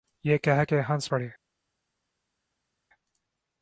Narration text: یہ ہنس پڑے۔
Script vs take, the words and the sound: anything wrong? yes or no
yes